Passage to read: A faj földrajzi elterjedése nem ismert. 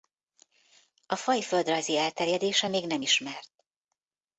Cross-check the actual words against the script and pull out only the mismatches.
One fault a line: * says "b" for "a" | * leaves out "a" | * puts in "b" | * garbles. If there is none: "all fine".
* puts in "még"